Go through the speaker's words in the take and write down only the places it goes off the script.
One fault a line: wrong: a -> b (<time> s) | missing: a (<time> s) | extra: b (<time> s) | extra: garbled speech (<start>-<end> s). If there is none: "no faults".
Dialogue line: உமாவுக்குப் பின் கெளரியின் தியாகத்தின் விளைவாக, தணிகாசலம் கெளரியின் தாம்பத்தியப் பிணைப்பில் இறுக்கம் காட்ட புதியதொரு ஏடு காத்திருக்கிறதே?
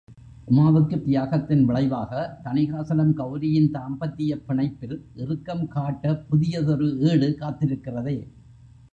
missing: பின் கெளரியின் (1.0 s)